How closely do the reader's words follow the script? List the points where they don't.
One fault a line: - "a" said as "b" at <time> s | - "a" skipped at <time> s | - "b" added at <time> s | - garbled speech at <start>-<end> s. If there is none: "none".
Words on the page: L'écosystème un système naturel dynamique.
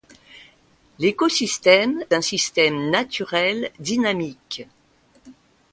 none